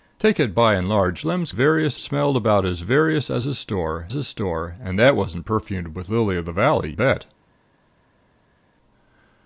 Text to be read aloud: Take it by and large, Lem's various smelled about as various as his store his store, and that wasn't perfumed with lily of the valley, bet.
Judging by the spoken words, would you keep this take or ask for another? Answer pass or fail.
pass